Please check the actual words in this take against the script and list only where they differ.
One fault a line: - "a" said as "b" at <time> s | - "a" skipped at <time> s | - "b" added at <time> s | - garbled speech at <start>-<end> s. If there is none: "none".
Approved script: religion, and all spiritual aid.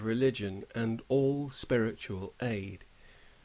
none